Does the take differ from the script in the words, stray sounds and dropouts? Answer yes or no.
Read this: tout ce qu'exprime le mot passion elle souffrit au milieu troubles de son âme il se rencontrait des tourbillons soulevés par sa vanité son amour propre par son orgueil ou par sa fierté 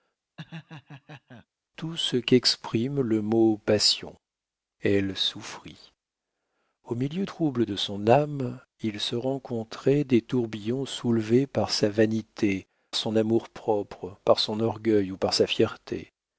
yes